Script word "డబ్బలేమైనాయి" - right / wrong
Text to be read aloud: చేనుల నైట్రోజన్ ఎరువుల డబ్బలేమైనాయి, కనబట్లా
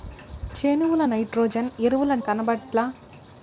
wrong